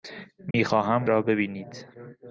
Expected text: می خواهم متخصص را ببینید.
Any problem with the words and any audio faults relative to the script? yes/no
yes